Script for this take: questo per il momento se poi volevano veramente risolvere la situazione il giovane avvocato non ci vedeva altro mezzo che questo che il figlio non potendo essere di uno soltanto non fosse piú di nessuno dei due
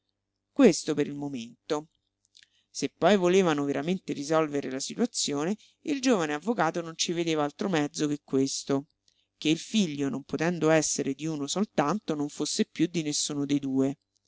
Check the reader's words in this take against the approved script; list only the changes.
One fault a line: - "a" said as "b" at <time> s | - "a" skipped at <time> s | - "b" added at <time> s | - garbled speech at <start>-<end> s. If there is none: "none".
none